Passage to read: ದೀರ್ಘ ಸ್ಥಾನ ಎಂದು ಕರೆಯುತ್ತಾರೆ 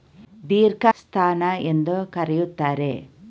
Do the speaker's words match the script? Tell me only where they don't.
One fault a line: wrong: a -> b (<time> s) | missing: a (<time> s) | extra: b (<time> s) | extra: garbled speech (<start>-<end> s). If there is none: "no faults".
no faults